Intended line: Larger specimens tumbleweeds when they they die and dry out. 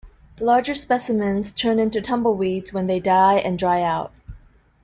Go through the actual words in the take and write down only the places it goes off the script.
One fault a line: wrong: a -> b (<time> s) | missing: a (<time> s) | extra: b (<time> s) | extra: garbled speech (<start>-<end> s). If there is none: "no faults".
extra: turn into (1.5 s)
missing: they (3.0 s)